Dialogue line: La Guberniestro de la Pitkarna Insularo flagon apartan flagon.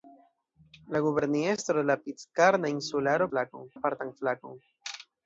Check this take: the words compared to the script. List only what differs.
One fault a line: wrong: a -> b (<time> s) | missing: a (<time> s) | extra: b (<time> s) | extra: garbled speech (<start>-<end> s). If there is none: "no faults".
no faults